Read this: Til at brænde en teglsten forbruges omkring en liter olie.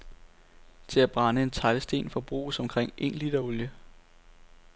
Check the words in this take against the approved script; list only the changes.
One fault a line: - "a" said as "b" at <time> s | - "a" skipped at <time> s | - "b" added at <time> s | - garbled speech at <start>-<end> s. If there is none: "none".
none